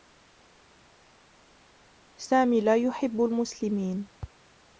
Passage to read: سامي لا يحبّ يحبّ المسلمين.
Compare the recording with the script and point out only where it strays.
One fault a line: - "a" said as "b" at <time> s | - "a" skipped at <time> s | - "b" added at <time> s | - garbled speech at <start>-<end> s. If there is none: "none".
- "يحبّ" skipped at 3.2 s